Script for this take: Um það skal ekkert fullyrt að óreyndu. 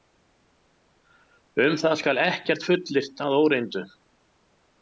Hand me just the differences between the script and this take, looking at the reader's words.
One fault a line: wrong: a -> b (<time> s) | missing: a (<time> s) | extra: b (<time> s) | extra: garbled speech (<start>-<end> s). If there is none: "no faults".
no faults